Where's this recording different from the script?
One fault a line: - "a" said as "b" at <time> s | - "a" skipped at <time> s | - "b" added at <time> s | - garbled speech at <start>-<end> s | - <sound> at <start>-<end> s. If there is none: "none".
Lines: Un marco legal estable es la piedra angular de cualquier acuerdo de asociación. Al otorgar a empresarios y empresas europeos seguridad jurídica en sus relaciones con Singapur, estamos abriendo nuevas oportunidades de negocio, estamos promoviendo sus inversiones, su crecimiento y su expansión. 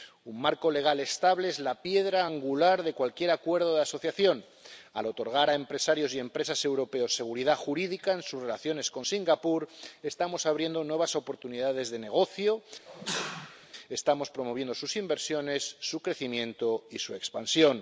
- sneeze at 12.8-13.7 s